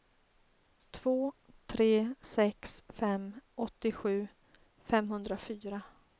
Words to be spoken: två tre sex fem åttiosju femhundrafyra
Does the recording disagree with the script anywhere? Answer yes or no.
no